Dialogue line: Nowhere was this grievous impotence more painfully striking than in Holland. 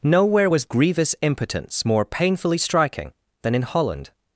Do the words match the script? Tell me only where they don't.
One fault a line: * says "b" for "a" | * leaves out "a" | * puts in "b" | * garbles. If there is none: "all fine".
* leaves out "this"